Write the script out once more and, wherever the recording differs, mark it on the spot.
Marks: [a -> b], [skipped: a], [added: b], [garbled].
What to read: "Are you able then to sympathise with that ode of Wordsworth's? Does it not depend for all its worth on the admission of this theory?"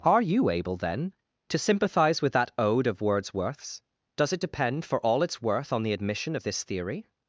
"Are you able then to sympathise with that ode of Wordsworth's? Does it [skipped: not] depend for all its worth on the admission of this theory?"